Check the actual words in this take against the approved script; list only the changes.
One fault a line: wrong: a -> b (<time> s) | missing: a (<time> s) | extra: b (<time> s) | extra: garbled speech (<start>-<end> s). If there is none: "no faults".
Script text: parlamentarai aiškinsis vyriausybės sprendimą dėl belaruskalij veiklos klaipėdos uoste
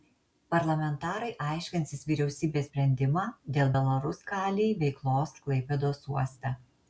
no faults